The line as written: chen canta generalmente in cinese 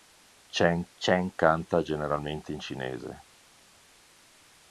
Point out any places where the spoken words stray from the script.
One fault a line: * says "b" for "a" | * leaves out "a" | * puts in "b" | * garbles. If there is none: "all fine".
* puts in "chen"